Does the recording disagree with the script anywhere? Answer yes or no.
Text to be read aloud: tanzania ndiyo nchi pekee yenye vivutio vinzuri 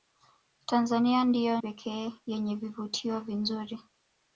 yes